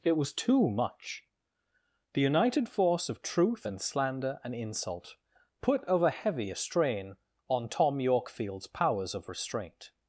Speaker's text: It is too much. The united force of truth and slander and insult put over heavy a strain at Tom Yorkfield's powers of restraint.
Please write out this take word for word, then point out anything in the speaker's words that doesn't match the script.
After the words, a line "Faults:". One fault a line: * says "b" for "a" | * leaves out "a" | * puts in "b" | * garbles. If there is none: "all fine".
It was too much. The united force of truth and slander and insult put over heavy a strain on Tom Yorkfield's powers of restraint.
Faults:
* says "was" for "is"
* says "on" for "at"